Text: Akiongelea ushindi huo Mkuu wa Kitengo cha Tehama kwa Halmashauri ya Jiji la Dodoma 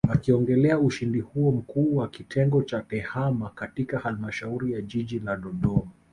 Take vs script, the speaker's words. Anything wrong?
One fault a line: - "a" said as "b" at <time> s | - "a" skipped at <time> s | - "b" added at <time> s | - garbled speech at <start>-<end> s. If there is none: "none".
- "kwa" said as "katika" at 3.5 s